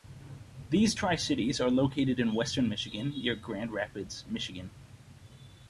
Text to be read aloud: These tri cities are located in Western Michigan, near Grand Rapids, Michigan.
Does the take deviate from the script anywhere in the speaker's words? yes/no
no